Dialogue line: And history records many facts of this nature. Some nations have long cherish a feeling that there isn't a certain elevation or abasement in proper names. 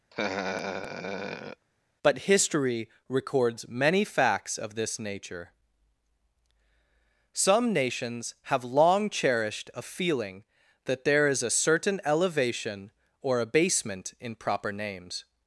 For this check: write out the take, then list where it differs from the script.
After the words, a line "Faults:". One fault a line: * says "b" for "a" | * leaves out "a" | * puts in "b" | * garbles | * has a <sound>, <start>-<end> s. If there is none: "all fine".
But history records many facts of this nature. Some nations have long cherished a feeling that there is a certain elevation or abasement in proper names.
Faults:
* has a laugh, 0.1-1.7 s
* says "But" for "And"
* says "cherished" for "cherish"
* says "is" for "isn't"